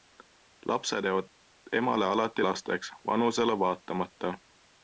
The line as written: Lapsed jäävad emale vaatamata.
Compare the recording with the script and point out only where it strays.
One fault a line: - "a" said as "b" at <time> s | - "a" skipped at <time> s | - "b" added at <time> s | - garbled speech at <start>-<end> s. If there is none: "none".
- "alati lasteks vanusele" added at 2.0 s